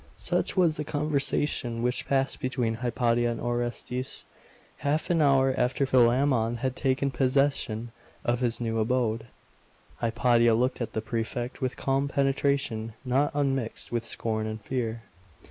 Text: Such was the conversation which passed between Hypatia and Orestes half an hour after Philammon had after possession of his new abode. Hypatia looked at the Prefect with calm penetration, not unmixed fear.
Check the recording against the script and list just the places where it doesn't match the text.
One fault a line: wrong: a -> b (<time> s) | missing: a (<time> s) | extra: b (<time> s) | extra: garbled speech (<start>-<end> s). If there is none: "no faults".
wrong: after -> taken (6.8 s)
extra: with scorn and (13.9 s)